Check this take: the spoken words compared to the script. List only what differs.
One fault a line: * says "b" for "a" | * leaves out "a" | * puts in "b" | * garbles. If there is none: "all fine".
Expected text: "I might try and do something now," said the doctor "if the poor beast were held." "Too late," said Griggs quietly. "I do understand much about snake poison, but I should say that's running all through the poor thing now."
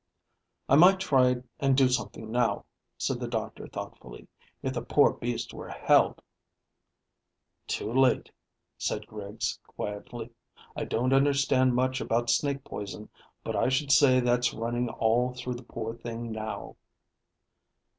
* puts in "thoughtfully"
* says "don't" for "do"